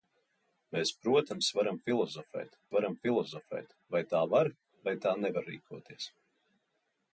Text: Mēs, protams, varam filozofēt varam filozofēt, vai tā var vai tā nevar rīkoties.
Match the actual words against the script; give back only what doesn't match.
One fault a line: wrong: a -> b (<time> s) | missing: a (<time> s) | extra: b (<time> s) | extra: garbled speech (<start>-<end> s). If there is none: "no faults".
no faults